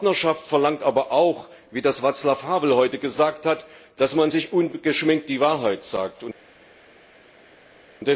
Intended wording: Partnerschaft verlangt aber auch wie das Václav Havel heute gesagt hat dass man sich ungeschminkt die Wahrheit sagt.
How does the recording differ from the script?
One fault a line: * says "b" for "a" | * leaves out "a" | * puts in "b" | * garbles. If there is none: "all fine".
all fine